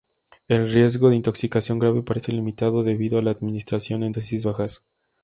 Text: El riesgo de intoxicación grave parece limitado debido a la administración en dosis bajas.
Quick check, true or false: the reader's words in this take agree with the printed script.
true